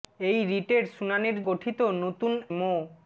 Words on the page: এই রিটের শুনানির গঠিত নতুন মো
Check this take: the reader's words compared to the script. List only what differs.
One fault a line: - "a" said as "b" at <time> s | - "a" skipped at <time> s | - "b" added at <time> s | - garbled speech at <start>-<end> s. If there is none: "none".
none